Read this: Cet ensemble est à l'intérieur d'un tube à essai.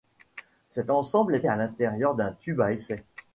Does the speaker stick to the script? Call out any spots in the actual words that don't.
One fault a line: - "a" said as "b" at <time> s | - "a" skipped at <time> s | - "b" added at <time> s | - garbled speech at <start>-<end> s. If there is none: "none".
none